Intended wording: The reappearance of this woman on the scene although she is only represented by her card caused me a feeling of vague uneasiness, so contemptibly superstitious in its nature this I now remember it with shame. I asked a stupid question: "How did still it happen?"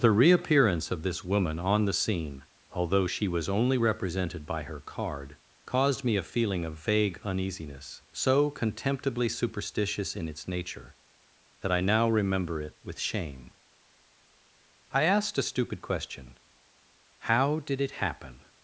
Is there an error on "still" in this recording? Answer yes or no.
yes